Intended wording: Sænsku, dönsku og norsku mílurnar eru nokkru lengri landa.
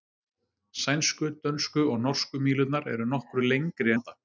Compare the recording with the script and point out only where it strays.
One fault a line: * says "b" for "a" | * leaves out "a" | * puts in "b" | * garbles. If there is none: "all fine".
all fine